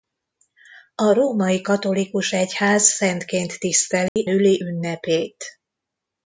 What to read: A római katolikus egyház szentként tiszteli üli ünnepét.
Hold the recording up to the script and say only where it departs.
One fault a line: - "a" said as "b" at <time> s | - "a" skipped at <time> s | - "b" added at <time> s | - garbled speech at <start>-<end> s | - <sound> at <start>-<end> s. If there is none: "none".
- dropout at 4.1-4.2 s